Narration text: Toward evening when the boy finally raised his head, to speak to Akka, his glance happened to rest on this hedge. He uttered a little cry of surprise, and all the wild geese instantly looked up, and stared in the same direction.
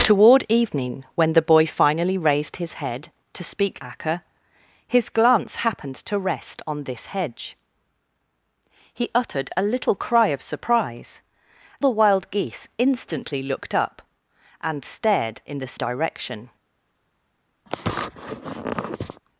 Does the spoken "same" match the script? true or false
false